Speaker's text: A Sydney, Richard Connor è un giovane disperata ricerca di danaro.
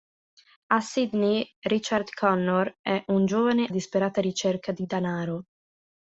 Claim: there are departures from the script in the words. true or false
false